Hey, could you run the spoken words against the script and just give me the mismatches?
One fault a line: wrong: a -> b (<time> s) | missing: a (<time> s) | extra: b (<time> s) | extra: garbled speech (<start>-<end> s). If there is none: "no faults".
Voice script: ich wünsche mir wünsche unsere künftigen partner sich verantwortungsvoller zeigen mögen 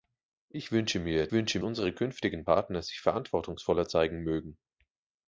no faults